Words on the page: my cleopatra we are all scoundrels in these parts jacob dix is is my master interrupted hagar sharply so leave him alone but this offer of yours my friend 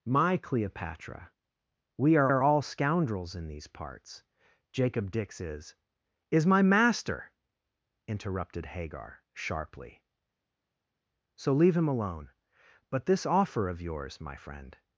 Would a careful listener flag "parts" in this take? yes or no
no